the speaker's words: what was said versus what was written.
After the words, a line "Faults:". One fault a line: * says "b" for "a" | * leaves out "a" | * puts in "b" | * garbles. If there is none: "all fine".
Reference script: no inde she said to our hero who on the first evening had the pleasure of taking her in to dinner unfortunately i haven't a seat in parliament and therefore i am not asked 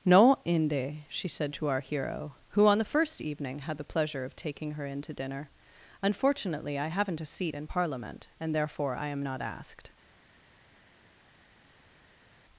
no inde she said to our hero who on the first evening had the pleasure of taking her in to dinner unfortunately i haven't a seat in parliament and therefore i am not asked
Faults:
all fine